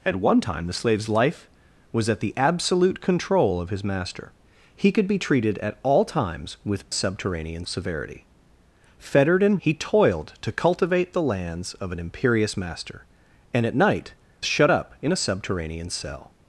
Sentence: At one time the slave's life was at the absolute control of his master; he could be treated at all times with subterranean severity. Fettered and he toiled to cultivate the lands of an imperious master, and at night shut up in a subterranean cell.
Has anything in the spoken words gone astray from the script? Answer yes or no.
no